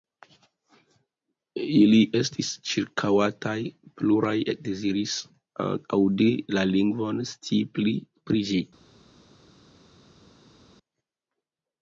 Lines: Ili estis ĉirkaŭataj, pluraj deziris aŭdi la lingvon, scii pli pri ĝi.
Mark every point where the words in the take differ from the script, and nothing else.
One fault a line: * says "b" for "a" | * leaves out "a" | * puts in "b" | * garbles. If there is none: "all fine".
all fine